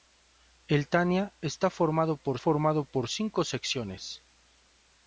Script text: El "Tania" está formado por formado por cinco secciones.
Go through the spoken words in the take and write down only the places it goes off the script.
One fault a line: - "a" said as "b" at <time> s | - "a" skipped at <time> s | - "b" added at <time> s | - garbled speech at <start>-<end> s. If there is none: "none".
none